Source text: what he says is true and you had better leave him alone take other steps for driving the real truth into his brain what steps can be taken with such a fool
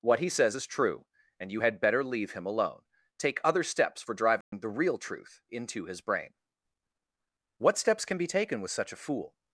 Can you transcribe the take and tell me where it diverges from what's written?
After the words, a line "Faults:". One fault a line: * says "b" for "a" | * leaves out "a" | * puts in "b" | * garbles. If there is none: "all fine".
what he says is true and you had better leave him alone take other steps for driving the real truth into his brain what steps can be taken with such a fool
Faults:
all fine